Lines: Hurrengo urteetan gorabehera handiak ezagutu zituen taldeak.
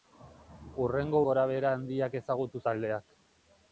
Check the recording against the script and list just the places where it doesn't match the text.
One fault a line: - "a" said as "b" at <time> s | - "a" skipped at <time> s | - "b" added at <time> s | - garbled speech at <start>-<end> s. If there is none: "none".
- "urteetan" skipped at 1.2 s
- "zituen" skipped at 2.6 s